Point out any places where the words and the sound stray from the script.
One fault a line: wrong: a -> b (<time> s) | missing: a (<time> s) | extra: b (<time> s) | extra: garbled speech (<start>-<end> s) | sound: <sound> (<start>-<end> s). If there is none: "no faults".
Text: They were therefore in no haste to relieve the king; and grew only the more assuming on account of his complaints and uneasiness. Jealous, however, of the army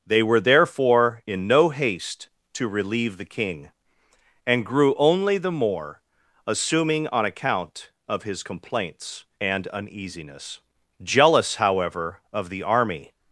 no faults